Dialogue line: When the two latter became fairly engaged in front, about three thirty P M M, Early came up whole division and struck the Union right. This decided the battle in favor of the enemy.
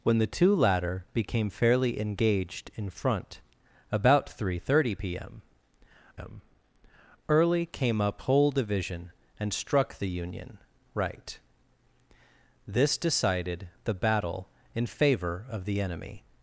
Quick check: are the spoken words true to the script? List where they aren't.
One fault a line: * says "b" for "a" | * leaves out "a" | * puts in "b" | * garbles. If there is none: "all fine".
all fine